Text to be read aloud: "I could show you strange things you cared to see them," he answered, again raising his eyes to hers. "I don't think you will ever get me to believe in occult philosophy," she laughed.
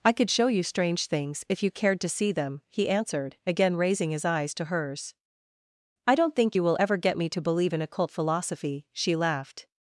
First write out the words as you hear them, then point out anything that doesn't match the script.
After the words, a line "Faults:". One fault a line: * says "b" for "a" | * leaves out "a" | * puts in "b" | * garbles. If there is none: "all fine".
"I could show you strange things if you cared to see them," he answered, again raising his eyes to hers. "I don't think you will ever get me to believe in occult philosophy," she laughed.
Faults:
* puts in "if"